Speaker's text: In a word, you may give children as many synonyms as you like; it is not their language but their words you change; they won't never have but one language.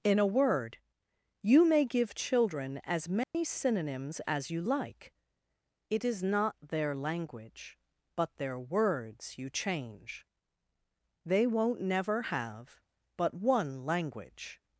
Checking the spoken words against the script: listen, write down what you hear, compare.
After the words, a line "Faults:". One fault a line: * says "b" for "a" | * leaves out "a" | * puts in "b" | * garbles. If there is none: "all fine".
In a word, you may give children as many synonyms as you like; it is not their language but their words you change; they won't never have but one language.
Faults:
all fine